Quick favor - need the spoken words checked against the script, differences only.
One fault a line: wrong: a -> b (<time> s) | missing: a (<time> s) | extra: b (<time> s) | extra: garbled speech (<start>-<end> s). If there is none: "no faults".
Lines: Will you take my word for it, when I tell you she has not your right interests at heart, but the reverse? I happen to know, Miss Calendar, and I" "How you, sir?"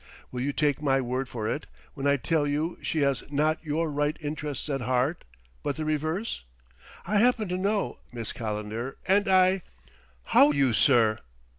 no faults